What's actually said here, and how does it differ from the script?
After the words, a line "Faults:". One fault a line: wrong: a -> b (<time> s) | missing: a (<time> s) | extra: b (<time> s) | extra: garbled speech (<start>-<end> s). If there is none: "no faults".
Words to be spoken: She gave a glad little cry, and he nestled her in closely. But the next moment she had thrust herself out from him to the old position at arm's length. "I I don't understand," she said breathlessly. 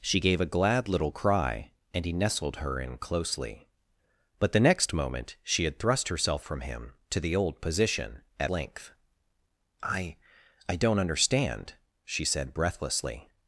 She gave a glad little cry, and he nestled her in closely. But the next moment she had thrust herself from him to the old position at length. "I I don't understand," she said breathlessly.
Faults:
missing: out (6.5 s)
missing: arm's (8.5 s)